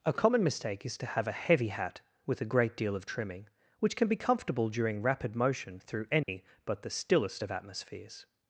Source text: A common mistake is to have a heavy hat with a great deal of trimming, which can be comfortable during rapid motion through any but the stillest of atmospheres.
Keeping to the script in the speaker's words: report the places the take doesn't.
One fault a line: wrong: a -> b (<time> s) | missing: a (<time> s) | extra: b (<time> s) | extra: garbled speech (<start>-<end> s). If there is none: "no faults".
no faults